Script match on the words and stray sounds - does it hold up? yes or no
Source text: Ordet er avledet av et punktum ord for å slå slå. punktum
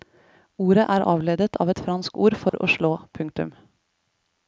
no